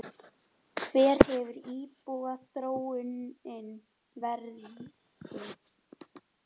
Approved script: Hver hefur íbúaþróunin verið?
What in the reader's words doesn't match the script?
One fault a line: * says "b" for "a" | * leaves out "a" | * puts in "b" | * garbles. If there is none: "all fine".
all fine